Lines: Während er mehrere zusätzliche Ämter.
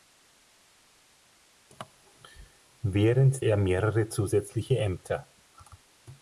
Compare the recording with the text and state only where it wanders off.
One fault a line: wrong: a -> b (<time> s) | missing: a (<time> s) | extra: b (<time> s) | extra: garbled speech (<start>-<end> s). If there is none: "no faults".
no faults